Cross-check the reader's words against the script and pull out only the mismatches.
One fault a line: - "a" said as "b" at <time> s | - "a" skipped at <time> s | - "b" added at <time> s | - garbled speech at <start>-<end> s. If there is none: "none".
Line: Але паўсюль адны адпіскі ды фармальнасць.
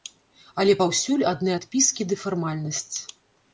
none